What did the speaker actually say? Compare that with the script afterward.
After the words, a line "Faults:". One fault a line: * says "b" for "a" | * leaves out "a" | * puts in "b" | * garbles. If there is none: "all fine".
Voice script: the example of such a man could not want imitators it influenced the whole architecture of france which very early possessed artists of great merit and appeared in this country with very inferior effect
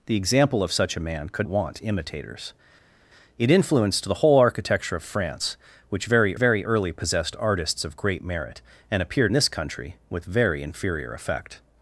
the example of such a man could want imitators it influenced the whole architecture of france which very very early possessed artists of great merit and appeared this country with very inferior effect
Faults:
* leaves out "not"
* puts in "very"
* leaves out "in"